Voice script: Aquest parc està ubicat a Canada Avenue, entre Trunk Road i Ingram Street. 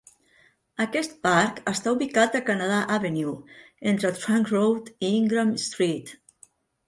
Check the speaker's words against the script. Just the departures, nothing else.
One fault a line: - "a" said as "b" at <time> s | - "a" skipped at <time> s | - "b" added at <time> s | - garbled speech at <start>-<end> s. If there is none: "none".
none